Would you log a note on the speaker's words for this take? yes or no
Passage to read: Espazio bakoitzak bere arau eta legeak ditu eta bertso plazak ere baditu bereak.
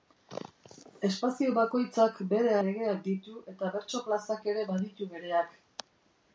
yes